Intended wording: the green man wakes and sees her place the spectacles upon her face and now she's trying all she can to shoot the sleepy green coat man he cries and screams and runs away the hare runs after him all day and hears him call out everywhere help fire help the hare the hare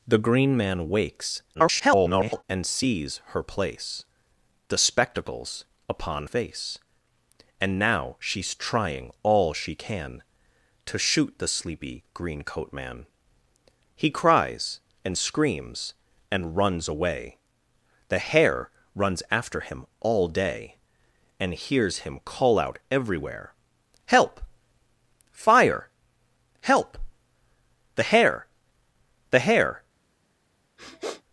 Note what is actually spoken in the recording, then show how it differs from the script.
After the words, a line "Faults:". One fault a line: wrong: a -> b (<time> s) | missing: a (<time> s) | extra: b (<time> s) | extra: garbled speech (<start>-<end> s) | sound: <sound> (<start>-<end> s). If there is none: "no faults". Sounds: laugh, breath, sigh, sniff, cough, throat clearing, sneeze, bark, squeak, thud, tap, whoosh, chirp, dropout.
the green man wakes [garbled] and sees her place the spectacles upon face and now she's trying all she can to shoot the sleepy green coat man he cries and screams and runs away the hare runs after him all day and hears him call out everywhere help fire help the hare the hare
Faults:
extra: garbled speech (1.5-2.4 s)
missing: her (6.3 s)
sound: sniff (30.8-31.2 s)